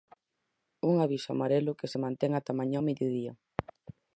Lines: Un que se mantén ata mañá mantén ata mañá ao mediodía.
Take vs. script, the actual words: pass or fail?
fail